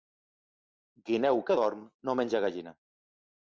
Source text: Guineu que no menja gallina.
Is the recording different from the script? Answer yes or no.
yes